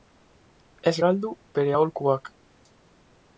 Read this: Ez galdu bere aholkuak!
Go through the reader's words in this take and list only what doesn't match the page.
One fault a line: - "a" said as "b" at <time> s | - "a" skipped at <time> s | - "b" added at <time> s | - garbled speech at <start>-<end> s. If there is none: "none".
none